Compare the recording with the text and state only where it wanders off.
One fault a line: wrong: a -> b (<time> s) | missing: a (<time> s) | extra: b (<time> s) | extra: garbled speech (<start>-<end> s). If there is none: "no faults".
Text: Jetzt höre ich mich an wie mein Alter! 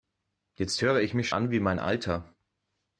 no faults